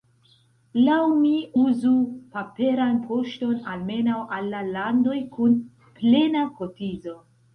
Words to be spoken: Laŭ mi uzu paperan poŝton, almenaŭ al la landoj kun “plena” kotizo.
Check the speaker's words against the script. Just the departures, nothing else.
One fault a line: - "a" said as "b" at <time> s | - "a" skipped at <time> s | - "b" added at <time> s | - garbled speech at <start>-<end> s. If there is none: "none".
none